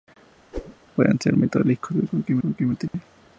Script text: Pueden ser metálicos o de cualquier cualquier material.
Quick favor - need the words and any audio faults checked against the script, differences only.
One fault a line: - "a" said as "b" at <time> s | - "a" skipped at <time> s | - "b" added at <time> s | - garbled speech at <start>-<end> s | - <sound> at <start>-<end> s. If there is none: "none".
- whoosh at 0.5-0.8 s
- dropout at 2.9-2.9 s